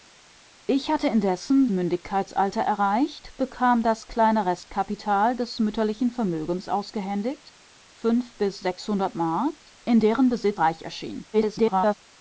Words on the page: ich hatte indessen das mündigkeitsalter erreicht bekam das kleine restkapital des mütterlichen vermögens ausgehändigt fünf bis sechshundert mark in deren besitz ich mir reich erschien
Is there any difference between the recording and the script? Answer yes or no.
yes